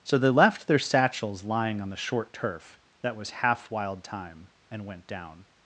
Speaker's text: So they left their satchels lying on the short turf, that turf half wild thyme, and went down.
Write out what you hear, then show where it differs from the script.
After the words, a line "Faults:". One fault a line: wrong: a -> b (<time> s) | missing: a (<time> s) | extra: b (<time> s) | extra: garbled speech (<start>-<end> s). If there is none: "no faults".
So they left their satchels lying on the short turf, that was half wild thyme, and went down.
Faults:
wrong: turf -> was (3.1 s)